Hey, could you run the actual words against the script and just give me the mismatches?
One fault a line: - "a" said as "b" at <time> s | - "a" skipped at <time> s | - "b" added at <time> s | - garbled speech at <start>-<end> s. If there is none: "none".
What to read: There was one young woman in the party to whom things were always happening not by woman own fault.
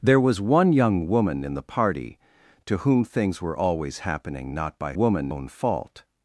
none